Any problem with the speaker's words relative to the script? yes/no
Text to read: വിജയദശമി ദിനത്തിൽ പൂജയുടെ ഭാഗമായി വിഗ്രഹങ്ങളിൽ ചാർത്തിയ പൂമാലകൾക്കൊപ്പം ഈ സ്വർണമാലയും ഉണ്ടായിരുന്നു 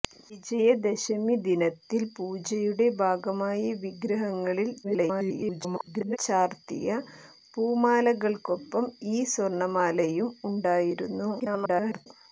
yes